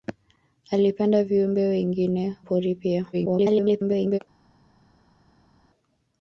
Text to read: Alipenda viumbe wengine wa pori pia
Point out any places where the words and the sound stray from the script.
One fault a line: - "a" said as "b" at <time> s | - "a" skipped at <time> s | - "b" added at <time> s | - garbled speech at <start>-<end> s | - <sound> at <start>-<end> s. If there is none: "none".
- "wa" skipped at 2.4 s
- garbled speech at 3.1-4.2 s